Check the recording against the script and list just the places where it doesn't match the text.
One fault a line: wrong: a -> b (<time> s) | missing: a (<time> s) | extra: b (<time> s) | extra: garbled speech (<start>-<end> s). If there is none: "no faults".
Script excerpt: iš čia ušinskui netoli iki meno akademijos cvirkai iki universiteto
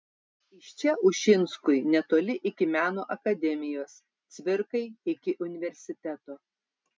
no faults